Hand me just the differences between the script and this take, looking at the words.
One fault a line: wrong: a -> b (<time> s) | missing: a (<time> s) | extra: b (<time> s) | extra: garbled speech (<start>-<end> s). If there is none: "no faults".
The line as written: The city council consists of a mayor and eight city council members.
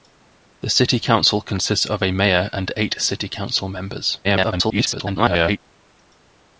extra: garbled speech (4.2-5.6 s)